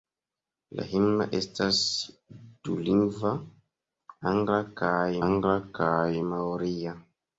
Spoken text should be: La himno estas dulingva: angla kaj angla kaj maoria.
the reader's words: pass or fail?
pass